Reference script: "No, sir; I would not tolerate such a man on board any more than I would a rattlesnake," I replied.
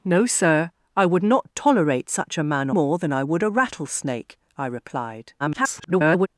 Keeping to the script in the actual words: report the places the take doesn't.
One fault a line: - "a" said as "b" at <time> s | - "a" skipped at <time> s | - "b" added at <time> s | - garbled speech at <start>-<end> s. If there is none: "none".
- "on board any" skipped at 2.7 s
- garbled speech at 5.4-6.3 s